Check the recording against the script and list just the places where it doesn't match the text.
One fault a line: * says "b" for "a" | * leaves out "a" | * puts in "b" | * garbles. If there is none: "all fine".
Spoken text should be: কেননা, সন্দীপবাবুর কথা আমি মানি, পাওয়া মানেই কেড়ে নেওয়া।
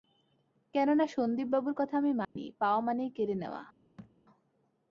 all fine